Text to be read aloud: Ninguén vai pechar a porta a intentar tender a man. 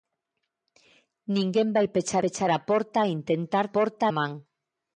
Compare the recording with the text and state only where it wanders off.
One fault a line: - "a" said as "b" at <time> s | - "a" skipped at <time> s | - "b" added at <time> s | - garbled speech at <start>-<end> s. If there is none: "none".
- "pechar" added at 2.2 s
- "tender" said as "porta" at 3.8 s